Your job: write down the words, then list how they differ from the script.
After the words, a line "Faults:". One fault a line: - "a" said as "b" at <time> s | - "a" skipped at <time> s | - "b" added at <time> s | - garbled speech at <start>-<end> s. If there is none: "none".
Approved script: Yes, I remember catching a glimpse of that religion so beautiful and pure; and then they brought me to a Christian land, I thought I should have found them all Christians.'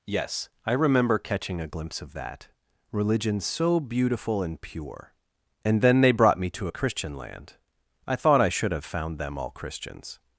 Yes, I remember catching a glimpse of that religion so beautiful and pure; and then they brought me to a Christian land, I thought I should have found them all Christians.'
Faults:
none